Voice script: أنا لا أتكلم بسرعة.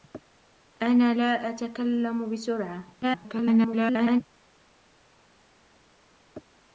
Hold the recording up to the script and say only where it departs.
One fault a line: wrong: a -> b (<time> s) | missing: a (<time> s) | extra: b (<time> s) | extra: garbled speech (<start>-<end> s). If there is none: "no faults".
extra: garbled speech (3.0-4.2 s)